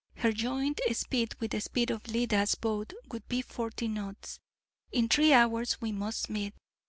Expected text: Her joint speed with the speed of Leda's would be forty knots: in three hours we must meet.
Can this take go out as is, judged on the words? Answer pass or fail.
fail